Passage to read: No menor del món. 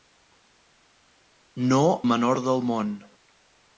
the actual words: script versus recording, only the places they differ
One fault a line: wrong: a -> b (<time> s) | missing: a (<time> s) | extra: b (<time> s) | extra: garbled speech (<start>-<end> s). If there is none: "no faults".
no faults